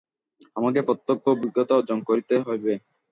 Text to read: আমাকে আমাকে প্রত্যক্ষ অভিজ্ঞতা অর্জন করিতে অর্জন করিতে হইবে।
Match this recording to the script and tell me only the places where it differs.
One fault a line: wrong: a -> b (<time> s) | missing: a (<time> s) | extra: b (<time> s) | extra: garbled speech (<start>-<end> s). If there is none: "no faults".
missing: আমাকে (0.8 s)
missing: অর্জন করিতে (2.3 s)